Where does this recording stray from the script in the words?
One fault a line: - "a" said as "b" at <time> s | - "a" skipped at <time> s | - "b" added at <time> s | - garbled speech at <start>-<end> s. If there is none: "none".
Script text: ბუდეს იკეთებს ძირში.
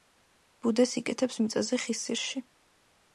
- "მიწაზე ხის" added at 1.4 s